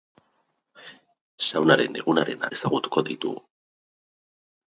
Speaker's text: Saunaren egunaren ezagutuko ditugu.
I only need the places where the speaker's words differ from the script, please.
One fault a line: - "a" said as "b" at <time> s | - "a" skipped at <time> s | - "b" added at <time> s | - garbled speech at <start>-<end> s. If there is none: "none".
none